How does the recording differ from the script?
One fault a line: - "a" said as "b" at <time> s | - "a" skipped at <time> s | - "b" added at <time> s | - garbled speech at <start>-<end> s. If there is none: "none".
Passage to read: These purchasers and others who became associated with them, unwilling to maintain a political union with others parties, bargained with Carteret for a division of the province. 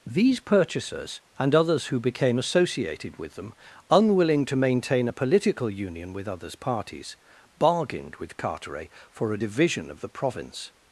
none